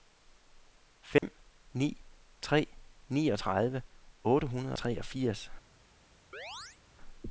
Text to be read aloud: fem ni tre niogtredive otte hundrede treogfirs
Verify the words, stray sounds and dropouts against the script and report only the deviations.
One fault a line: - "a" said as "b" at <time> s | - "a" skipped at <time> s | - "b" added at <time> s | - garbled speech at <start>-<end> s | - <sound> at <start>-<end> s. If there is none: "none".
- dropout at 1.2-1.2 s
- chirp at 6.3-6.8 s